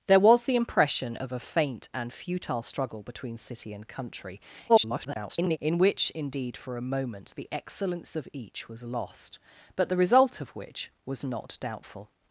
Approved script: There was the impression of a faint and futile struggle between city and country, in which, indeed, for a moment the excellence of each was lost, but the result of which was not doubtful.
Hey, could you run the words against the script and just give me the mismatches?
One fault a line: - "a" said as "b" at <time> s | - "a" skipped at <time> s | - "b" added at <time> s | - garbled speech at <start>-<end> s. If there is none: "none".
- garbled speech at 4.7-5.6 s